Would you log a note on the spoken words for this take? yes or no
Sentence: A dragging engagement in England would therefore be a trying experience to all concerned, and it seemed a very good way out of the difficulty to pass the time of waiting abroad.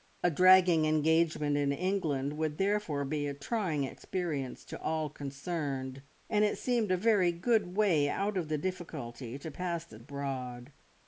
yes